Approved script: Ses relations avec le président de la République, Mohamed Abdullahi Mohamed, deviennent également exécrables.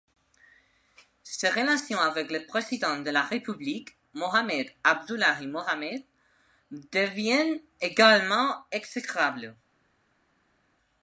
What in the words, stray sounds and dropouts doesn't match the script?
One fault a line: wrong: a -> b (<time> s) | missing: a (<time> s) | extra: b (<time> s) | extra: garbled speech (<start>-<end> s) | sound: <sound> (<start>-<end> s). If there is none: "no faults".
no faults